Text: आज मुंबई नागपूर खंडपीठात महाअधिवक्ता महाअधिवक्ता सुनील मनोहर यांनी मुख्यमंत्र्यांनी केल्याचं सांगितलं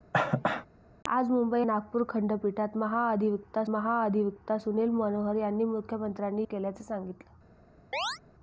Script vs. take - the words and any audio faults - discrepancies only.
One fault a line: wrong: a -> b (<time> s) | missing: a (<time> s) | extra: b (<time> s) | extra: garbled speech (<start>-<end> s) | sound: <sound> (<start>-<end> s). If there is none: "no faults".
sound: cough (0.1-0.7 s)
sound: chirp (7.9-8.2 s)